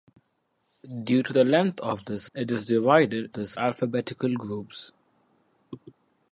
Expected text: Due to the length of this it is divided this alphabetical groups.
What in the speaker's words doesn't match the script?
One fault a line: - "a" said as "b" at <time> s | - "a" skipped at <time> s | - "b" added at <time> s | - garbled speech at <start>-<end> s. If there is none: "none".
none